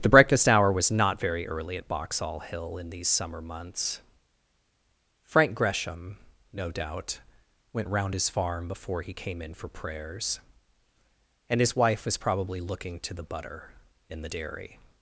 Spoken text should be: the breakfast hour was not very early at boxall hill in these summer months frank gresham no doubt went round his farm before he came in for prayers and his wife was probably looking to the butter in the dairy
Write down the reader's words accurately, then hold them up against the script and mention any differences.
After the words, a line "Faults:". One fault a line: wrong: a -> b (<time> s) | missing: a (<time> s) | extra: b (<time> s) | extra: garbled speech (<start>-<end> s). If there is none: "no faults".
the breakfast hour was not very early at boxall hill in these summer months frank gresham no doubt went round his farm before he came in for prayers and his wife was probably looking to the butter in the dairy
Faults:
no faults